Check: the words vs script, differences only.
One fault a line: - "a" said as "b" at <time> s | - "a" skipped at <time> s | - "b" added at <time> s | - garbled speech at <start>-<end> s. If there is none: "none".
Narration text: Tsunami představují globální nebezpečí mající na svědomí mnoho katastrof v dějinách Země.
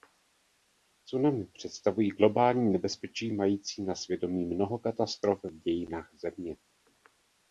none